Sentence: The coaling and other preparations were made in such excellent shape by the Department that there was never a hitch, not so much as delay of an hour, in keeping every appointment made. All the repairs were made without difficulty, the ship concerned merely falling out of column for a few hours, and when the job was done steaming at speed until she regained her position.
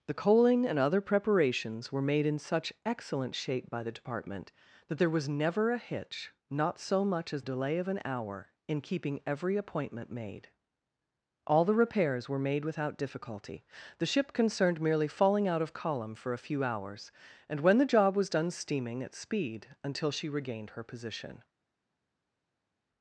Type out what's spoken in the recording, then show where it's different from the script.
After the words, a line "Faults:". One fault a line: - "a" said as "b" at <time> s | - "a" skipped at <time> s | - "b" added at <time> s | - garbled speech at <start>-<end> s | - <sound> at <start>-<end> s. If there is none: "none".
The coaling and other preparations were made in such excellent shape by the Department that there was never a hitch, not so much as delay of an hour, in keeping every appointment made. All the repairs were made without difficulty, the ship concerned merely falling out of column for a few hours, and when the job was done steaming at speed until she regained her position.
Faults:
none